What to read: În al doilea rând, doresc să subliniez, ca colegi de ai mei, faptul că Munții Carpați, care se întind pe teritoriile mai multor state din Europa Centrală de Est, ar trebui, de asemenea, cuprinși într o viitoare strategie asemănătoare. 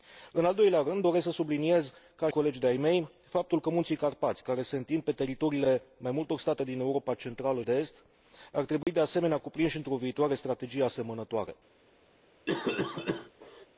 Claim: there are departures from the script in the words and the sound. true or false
true